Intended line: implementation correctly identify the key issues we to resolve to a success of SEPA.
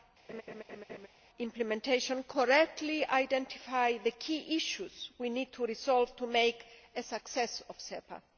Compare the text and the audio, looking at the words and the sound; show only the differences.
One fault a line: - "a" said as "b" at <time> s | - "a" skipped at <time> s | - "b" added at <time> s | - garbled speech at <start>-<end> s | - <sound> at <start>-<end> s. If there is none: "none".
- laugh at 0.3-1.1 s
- "need" added at 5.3 s
- "make" added at 6.3 s